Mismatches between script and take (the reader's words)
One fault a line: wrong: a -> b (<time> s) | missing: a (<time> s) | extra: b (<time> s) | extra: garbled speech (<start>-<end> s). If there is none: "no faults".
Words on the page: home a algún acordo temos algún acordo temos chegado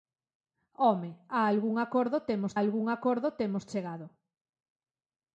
no faults